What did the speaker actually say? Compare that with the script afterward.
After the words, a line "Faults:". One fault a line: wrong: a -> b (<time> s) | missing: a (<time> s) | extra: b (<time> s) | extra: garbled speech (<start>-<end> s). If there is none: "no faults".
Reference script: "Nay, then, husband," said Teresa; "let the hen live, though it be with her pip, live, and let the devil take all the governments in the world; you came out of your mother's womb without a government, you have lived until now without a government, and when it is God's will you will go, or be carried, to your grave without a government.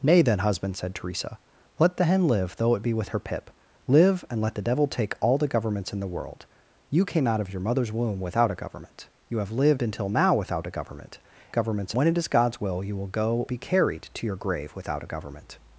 "Nay, then, husband," said Teresa; "let the hen live, though it be with her pip, live, and let the devil take all the governments in the world; you came out of your mother's womb without a government, you have lived until now without a government, governments when it is God's will you will go, be carried, to your grave without a government.
Faults:
wrong: and -> governments (11.5 s)
missing: or (13.5 s)